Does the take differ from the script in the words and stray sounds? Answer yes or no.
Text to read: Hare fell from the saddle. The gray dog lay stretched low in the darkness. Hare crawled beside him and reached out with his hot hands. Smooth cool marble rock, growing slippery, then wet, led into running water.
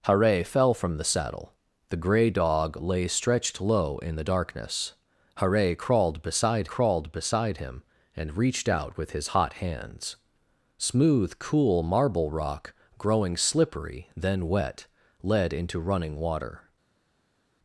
yes